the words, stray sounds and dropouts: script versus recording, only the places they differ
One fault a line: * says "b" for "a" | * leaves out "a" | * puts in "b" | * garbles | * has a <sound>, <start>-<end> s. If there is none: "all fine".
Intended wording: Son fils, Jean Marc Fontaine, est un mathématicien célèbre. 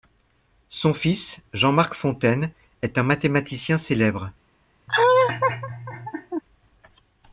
* has a laugh, 4.9-6.4 s